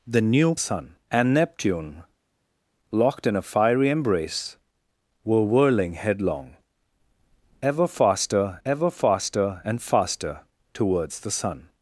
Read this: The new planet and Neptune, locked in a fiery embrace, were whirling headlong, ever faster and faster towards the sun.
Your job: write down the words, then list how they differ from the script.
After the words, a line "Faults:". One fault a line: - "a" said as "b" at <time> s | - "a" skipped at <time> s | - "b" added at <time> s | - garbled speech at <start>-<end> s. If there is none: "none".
The new sun and Neptune, locked in a fiery embrace, were whirling headlong, ever faster ever faster and faster towards the sun.
Faults:
- "planet" said as "sun" at 0.6 s
- "ever faster" added at 8.7 s